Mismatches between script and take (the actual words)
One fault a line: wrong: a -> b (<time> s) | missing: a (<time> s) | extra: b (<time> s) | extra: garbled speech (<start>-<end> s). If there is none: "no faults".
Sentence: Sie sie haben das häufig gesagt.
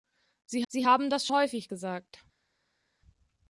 no faults